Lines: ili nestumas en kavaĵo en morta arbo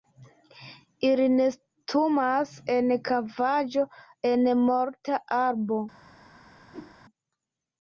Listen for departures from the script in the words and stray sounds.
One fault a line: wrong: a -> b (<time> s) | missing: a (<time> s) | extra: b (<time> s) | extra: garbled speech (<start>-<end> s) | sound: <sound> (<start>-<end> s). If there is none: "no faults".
sound: whoosh (6.7-7.0 s)